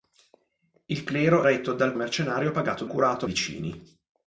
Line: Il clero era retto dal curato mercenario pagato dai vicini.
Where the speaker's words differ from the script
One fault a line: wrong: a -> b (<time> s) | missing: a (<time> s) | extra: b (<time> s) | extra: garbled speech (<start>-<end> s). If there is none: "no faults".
missing: era (1.4 s)
missing: curato (2.0 s)
wrong: dai -> curato (2.9 s)